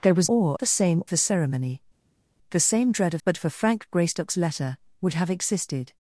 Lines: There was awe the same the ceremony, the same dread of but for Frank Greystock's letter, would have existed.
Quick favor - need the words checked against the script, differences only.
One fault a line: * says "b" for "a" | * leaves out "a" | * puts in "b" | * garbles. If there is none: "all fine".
all fine